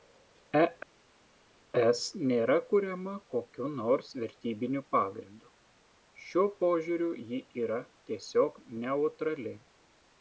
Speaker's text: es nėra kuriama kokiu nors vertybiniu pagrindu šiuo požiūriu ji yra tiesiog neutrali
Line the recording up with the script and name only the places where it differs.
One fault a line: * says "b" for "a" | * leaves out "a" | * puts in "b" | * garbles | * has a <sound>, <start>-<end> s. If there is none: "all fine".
all fine